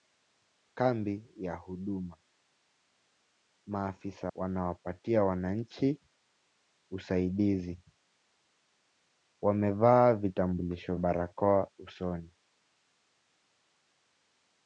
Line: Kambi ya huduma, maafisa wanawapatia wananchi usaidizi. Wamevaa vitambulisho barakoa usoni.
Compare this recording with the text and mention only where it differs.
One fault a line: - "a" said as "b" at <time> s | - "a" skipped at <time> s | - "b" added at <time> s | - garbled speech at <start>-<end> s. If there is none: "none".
none